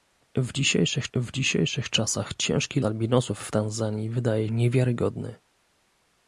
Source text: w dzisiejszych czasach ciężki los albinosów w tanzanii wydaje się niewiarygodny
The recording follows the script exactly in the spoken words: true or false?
false